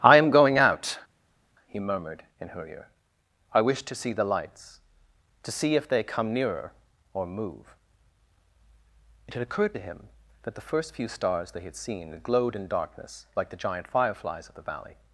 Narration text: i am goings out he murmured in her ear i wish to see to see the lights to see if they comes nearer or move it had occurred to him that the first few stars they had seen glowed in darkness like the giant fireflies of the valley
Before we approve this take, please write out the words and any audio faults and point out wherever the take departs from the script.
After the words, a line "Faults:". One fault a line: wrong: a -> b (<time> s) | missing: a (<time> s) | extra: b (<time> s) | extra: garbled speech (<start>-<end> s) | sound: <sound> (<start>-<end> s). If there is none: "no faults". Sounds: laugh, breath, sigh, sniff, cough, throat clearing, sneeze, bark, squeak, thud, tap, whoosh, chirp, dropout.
i am going out he murmured in her ear i wish to see the lights to see if they come nearer or move it had occurred to him that the first few stars they had seen glowed in darkness like the giant fireflies of the valley
Faults:
wrong: goings -> going (0.3 s)
missing: to see (4.1 s)
wrong: comes -> come (6.0 s)